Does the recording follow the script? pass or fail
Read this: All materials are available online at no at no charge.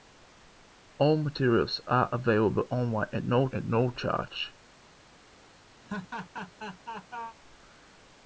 pass